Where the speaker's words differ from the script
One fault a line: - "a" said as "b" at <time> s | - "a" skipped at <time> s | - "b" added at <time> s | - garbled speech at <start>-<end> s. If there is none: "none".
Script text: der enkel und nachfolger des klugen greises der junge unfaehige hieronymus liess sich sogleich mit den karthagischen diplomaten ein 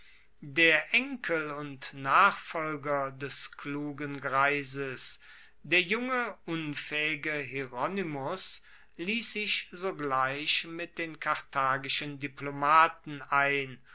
none